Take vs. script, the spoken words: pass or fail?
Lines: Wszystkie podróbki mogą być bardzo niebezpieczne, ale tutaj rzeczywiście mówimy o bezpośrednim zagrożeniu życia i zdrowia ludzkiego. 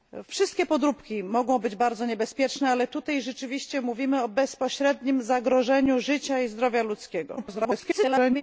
fail